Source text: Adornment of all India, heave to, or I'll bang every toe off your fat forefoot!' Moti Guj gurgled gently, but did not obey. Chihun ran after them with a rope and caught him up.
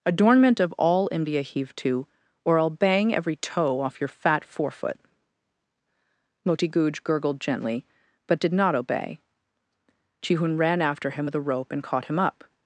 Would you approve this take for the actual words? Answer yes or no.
no